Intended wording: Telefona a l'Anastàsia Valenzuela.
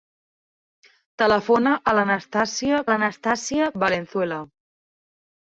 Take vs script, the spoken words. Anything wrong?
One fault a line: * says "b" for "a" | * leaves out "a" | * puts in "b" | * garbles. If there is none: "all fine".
* puts in "l'Anastàsia"